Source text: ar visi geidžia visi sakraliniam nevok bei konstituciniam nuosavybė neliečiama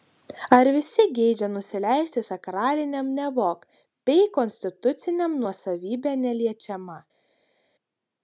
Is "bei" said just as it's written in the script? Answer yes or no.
yes